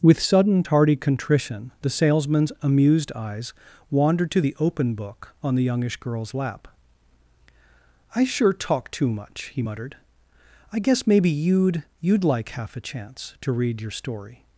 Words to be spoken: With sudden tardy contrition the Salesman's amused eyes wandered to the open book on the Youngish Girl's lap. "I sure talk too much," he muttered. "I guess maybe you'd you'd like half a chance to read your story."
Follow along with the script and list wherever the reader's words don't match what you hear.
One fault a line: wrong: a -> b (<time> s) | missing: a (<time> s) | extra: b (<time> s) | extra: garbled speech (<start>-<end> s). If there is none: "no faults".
no faults